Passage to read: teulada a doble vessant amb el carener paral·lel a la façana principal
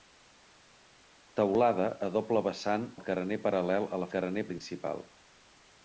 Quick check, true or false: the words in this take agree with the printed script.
false